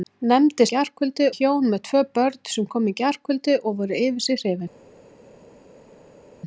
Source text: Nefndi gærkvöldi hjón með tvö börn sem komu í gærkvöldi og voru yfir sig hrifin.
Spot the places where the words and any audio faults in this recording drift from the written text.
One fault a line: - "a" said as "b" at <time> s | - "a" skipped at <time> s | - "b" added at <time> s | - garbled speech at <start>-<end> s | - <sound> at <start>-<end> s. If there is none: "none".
none